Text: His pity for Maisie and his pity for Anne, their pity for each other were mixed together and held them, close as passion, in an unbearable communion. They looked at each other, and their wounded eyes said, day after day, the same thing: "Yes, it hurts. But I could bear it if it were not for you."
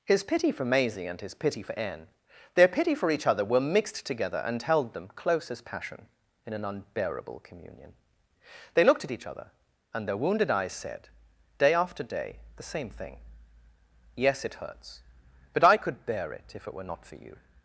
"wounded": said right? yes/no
yes